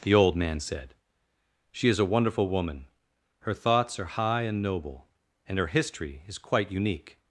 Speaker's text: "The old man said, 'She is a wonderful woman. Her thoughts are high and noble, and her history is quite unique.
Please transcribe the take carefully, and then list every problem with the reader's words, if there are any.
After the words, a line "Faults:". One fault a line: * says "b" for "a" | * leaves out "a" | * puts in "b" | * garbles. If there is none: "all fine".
"The old man said, 'She is a wonderful woman. Her thoughts are high and noble, and her history is quite unique.
Faults:
all fine